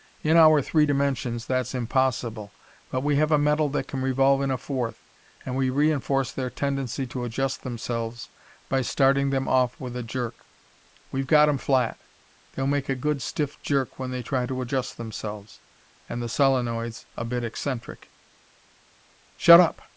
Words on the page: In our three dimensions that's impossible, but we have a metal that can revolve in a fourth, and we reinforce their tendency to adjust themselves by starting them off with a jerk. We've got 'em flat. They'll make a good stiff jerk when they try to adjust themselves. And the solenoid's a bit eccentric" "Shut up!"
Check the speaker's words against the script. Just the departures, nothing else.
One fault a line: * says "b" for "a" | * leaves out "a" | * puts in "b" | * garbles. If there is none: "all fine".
all fine